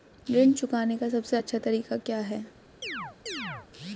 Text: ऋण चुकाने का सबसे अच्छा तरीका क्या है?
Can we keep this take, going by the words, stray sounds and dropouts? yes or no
no